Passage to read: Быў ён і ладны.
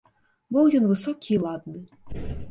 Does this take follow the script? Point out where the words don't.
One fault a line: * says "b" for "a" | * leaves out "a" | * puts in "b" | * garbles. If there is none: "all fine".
* puts in "высокі"